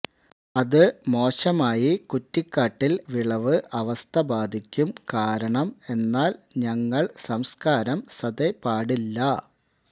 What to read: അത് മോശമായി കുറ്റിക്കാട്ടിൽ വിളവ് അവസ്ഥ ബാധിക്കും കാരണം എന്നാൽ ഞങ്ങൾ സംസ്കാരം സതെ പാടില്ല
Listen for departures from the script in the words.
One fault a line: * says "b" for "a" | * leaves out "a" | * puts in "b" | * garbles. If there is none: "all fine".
all fine